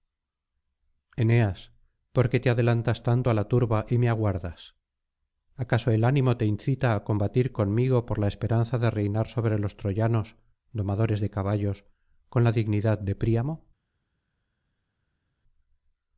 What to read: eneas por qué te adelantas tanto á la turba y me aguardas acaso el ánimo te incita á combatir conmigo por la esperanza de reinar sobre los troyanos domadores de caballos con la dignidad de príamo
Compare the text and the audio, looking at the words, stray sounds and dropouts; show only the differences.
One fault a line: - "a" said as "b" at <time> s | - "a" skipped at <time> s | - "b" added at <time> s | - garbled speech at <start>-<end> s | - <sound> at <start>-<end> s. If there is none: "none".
none